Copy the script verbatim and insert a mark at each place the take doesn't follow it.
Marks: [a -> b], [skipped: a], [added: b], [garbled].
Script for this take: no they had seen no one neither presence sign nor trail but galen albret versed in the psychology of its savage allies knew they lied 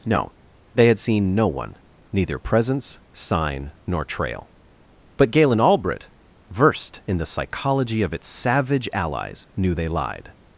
no they had seen no one neither presence sign nor trail but galen albret versed in the psychology of its savage allies knew they lied